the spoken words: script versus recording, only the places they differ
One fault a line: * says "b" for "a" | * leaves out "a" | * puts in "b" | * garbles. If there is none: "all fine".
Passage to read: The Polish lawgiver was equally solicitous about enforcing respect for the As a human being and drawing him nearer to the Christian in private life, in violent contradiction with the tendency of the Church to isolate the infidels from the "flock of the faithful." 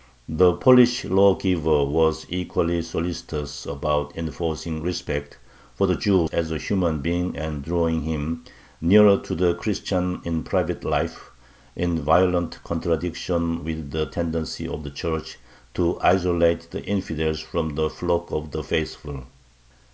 * puts in "Jew"